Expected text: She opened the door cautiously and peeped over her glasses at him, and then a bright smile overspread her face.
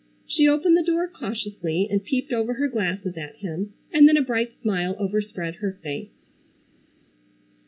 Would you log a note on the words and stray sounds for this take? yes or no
no